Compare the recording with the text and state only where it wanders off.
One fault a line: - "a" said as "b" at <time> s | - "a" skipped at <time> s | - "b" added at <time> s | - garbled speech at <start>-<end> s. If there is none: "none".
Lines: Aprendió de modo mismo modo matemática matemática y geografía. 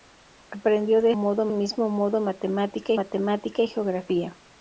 none